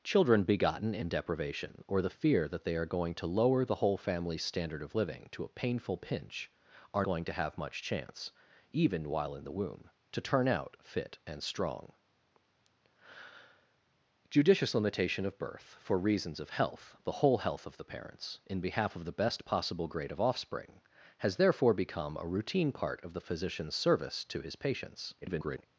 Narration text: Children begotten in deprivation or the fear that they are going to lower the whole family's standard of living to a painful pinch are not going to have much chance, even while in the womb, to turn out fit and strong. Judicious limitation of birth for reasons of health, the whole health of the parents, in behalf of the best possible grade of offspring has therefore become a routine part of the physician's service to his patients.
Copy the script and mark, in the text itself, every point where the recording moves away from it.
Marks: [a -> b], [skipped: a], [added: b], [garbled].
Children begotten in deprivation or the fear that they are going to lower the whole family's standard of living to a painful pinch are [skipped: not] going to have much chance, even while in the womb, to turn out fit and strong. Judicious limitation of birth for reasons of health, the whole health of the parents, in behalf of the best possible grade of offspring has therefore become a routine part of the physician's service to his patients. [garbled]